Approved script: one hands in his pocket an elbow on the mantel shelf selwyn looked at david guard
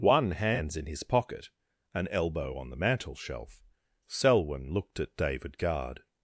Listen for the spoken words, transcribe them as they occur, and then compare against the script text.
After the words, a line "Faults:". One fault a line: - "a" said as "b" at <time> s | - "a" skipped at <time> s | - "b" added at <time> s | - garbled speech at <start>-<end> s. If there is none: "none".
one hands in his pocket an elbow on the mantel shelf selwyn looked at david guard
Faults:
none